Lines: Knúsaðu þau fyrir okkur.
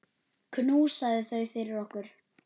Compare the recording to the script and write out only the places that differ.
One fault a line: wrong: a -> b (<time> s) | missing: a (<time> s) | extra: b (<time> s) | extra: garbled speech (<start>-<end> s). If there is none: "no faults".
no faults